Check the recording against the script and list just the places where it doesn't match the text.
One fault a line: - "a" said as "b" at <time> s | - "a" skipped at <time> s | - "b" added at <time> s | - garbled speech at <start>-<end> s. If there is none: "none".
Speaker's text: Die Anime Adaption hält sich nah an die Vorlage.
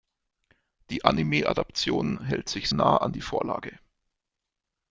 none